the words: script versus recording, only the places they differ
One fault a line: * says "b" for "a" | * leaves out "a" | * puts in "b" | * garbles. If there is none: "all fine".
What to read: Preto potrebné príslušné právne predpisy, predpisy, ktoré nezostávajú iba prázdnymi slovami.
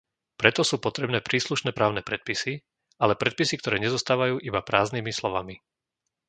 * puts in "sú"
* puts in "ale"